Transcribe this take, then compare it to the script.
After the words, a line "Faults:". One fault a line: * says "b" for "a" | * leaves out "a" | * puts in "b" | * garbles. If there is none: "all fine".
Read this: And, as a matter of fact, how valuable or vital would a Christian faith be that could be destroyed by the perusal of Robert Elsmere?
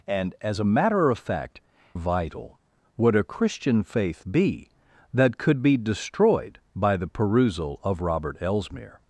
And, as a matter of fact, vital would a Christian faith be that could be destroyed by the perusal of Robert Elsmere?
Faults:
* leaves out "how valuable or"